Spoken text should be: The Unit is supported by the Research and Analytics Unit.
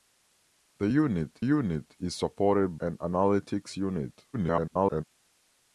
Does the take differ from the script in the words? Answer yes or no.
yes